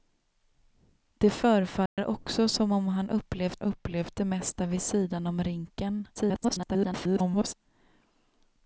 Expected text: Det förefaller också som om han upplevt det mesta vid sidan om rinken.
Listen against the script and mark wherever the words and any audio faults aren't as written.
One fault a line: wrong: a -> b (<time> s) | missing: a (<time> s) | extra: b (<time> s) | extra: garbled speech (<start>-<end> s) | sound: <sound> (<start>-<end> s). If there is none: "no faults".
sound: dropout (1.9-2.0 s)
extra: upplevt (3.6 s)
extra: garbled speech (6.2-7.5 s)